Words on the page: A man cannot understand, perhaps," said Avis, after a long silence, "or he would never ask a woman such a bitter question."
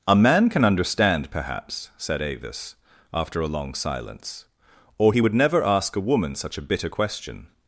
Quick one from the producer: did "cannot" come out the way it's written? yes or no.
no